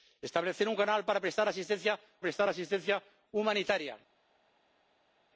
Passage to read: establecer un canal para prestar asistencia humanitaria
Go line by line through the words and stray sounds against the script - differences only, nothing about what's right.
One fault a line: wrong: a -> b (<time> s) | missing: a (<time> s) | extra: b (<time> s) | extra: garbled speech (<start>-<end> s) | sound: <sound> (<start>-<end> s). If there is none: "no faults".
extra: prestar asistencia (2.2 s)